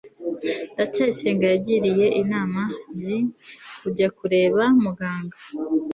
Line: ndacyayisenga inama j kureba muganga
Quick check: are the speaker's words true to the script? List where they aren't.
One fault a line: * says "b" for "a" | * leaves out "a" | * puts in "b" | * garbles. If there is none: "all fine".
* puts in "yagiriye"
* puts in "kujya"